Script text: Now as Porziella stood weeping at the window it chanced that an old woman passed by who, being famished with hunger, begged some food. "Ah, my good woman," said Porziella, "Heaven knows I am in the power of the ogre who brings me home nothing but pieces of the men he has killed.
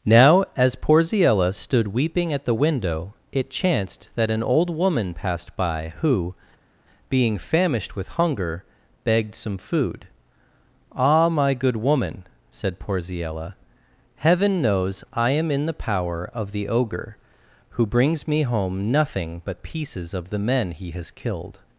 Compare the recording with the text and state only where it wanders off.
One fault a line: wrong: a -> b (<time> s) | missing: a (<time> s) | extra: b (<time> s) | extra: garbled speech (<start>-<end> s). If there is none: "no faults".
no faults